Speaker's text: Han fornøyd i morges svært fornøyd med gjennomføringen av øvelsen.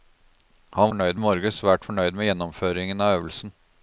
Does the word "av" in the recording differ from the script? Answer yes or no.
no